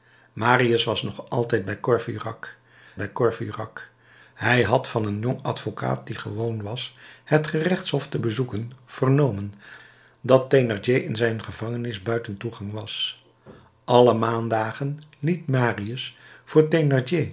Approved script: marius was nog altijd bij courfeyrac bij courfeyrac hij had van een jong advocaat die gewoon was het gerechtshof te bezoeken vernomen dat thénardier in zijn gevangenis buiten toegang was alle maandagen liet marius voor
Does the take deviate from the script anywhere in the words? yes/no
no